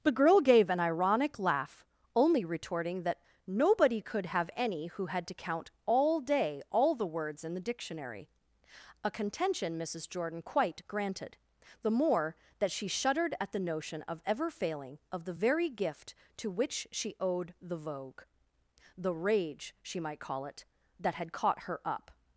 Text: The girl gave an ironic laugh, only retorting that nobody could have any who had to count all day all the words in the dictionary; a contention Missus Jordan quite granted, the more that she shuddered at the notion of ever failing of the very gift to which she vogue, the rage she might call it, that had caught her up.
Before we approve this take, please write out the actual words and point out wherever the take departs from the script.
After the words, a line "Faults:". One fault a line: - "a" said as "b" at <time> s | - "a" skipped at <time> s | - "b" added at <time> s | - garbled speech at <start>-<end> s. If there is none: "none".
The girl gave an ironic laugh, only retorting that nobody could have any who had to count all day all the words in the dictionary; a contention Missus Jordan quite granted, the more that she shuddered at the notion of ever failing of the very gift to which she owed the vogue, the rage she might call it, that had caught her up.
Faults:
- "owed the" added at 17.2 s